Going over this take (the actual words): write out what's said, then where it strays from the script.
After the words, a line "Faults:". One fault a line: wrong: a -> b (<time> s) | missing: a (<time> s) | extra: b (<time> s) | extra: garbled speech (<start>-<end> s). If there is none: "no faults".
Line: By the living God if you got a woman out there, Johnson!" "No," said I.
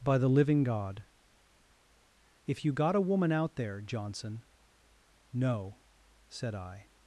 By the living God if you got a woman out there, Johnson!" "No," said I.
Faults:
no faults